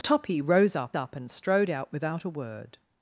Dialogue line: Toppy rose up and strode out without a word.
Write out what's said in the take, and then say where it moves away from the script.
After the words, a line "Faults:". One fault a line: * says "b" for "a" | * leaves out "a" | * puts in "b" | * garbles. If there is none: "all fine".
Toppy rose up up and strode out without a word.
Faults:
* puts in "up"